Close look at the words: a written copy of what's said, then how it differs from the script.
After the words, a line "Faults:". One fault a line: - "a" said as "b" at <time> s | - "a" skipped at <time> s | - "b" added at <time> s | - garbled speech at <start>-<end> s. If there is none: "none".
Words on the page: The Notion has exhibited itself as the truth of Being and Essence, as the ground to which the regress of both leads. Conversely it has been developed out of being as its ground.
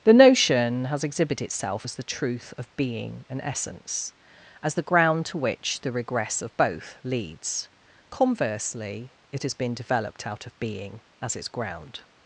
The Notion has exhibited itself as the truth of Being and Essence, as the ground to which the regress of both leads. Conversely it has been developed out of being as its ground.
Faults:
none